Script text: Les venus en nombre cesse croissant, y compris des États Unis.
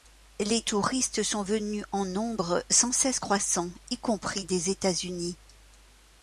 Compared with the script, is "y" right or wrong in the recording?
right